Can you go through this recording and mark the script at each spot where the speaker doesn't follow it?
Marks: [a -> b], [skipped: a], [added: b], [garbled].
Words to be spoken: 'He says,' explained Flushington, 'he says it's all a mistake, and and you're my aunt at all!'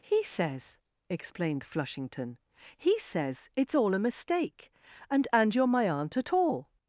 'He says,' explained Flushington, 'he says it's all a mistake, and and you're my aunt at all!'